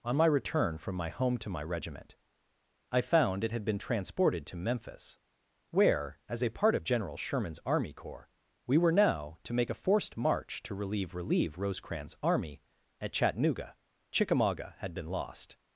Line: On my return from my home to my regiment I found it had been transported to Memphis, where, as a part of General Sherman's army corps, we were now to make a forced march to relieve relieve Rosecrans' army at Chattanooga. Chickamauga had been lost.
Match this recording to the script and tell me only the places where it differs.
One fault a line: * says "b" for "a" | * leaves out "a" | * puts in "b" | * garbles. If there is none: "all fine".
all fine